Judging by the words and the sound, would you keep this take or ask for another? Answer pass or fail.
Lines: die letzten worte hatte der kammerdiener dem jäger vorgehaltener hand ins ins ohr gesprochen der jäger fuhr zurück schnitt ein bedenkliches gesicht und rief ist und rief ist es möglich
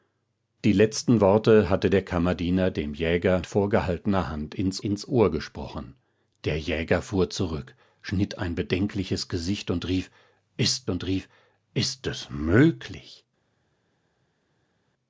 pass